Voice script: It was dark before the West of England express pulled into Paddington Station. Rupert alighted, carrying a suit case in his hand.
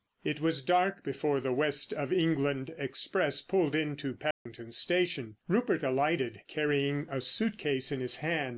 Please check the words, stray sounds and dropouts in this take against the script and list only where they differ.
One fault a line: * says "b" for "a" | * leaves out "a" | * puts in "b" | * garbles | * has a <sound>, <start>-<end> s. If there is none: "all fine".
* has a dropout, 4.3-4.5 s